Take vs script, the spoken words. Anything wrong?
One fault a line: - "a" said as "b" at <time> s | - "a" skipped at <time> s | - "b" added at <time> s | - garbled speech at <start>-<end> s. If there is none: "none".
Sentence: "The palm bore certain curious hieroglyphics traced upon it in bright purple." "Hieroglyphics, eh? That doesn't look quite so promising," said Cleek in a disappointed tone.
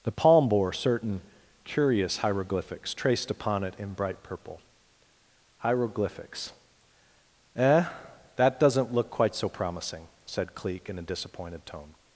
none